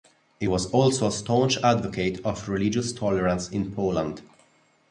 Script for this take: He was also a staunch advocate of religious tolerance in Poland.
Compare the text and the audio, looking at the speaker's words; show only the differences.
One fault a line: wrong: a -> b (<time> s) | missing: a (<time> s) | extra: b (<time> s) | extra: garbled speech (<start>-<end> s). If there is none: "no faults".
no faults